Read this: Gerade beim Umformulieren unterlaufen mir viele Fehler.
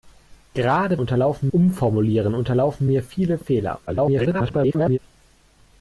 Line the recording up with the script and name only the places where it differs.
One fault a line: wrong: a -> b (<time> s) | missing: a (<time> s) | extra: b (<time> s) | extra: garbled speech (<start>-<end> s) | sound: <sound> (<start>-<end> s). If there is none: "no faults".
wrong: beim -> unterlaufen (1.0 s)
extra: garbled speech (3.9-5.0 s)